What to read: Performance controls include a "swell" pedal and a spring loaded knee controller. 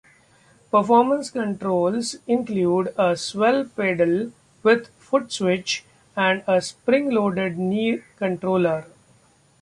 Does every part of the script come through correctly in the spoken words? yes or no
no